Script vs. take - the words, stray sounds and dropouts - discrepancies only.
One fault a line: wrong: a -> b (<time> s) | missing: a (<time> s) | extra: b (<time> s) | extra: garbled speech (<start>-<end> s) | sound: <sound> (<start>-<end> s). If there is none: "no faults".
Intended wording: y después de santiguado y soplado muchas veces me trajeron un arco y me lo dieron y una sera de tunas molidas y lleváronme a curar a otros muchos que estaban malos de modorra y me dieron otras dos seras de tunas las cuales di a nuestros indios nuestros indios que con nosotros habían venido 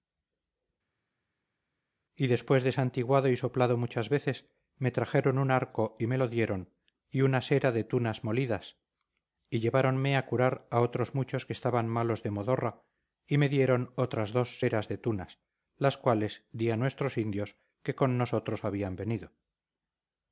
missing: nuestros indios (17.5 s)